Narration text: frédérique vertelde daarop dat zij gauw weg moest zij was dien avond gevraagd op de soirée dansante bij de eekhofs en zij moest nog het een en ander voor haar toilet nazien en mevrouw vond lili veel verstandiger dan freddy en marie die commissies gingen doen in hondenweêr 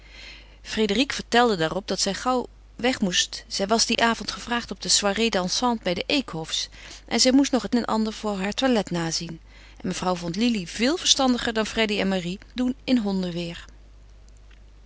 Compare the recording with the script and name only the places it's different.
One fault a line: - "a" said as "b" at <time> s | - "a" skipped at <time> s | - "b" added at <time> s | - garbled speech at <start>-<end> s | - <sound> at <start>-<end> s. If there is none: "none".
- dropout at 3.9-4.0 s
- "een" skipped at 7.8 s
- "die commissies gingen" skipped at 12.4 s